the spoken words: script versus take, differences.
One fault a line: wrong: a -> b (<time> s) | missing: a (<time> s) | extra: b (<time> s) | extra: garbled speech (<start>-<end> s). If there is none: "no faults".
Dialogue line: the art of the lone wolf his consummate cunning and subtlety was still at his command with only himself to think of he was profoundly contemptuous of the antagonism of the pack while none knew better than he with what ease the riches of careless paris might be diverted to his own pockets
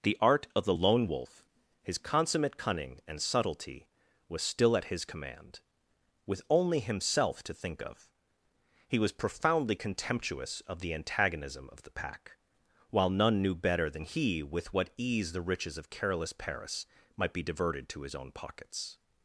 no faults